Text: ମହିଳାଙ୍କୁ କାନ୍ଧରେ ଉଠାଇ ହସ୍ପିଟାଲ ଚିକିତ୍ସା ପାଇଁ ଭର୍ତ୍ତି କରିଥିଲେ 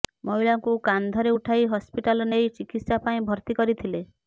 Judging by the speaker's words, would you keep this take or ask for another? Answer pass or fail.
fail